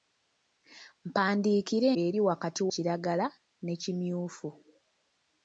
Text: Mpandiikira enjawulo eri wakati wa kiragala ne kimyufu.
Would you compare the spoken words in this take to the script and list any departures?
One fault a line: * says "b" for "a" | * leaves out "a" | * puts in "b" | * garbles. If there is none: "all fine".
* leaves out "enjawulo"
* leaves out "wa"